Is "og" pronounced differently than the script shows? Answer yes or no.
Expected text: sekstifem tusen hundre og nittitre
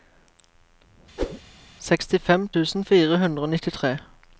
no